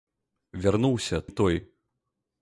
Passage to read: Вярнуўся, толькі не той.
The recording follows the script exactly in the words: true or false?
false